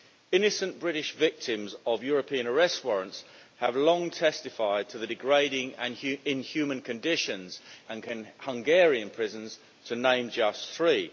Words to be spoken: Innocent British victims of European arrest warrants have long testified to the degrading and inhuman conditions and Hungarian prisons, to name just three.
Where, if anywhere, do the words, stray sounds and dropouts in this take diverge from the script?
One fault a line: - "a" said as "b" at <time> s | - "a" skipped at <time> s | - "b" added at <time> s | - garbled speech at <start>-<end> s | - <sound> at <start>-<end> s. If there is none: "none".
none